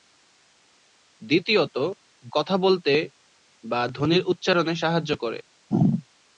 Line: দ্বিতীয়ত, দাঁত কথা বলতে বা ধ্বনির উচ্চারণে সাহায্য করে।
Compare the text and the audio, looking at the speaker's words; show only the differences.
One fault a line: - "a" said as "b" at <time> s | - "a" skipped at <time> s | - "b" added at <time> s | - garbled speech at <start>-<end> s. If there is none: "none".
- "দাঁত" skipped at 1.8 s